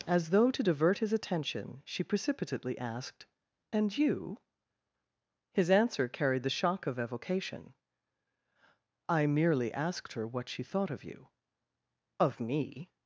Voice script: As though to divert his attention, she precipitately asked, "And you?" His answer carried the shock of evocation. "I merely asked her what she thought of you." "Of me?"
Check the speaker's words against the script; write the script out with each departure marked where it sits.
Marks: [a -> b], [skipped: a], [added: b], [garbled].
As though to divert his attention, she precipitately asked, "And you?" His answer carried the shock of evocation. "I merely asked her what she thought of you." "Of me?"